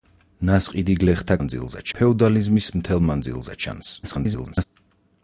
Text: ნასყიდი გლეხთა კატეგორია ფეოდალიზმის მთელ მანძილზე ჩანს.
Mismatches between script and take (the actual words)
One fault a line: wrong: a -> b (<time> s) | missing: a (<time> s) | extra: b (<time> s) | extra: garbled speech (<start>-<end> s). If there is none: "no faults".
wrong: კატეგორია -> მანძილზე (1.4 s)
extra: garbled speech (4.0-4.6 s)